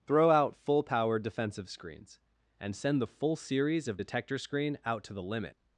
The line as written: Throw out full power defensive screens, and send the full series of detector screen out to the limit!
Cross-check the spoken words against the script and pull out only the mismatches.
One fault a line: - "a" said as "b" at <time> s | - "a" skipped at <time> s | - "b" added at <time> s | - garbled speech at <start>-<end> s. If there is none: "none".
none